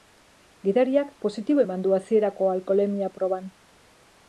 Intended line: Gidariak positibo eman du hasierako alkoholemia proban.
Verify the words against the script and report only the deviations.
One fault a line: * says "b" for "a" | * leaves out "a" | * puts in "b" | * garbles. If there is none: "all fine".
all fine